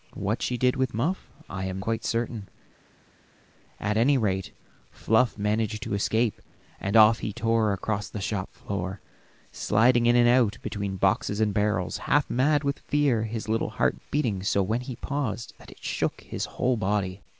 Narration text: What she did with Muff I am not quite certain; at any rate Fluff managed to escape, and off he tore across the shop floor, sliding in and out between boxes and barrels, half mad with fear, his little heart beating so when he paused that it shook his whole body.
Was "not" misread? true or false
true